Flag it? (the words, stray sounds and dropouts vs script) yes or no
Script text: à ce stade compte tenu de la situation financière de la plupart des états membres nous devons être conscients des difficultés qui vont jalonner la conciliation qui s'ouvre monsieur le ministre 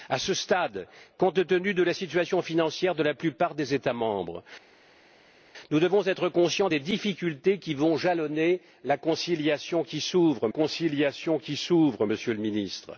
yes